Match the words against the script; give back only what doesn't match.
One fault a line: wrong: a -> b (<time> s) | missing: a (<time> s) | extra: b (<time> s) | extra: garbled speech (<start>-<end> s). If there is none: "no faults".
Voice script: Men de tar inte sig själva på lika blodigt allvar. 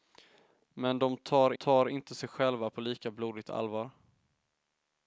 extra: tar (1.5 s)